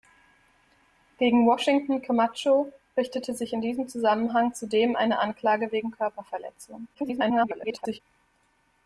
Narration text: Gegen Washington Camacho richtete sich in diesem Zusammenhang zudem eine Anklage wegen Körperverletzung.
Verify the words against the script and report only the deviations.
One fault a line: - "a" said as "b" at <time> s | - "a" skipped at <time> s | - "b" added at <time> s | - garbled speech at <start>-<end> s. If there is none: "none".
- garbled speech at 6.9-8.0 s